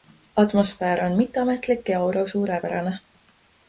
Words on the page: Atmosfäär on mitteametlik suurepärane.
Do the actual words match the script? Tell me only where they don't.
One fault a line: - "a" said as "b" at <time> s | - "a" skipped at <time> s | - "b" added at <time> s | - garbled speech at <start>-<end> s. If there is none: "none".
- "ja aura" added at 1.9 s